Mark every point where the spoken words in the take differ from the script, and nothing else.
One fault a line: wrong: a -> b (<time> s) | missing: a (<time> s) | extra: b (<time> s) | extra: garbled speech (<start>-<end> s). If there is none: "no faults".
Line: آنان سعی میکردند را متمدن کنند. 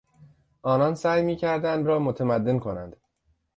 no faults